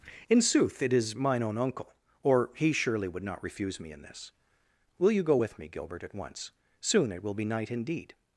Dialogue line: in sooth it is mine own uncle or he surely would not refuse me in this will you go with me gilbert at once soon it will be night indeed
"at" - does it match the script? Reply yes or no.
yes